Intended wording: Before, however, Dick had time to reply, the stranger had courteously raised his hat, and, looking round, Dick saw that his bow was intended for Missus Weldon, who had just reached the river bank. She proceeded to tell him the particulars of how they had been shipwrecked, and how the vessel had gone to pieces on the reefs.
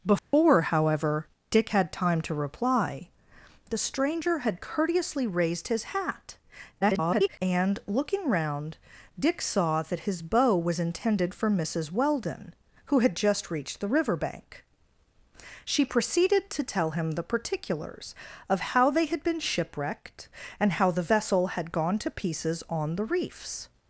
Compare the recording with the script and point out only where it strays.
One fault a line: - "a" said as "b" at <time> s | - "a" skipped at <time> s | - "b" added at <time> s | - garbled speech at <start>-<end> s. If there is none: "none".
- garbled speech at 6.8-7.4 s